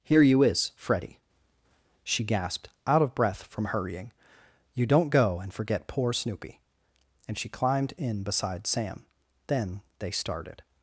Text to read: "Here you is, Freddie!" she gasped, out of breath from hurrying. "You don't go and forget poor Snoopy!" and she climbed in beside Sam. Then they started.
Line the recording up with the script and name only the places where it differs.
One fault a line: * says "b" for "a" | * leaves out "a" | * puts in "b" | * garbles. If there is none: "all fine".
all fine